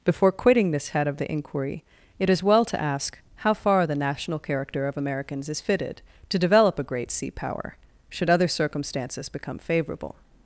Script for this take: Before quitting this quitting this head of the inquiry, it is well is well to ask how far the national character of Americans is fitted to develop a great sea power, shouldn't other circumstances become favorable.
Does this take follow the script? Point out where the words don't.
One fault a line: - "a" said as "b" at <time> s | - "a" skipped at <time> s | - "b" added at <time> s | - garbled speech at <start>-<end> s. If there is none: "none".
- "quitting this" skipped at 0.9 s
- "is well" skipped at 2.6 s
- "shouldn't" said as "should" at 8.1 s